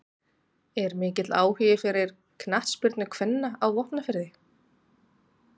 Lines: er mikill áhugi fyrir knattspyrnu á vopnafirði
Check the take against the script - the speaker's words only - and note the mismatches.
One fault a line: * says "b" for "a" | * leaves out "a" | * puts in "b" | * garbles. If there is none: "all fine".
* puts in "kvenna"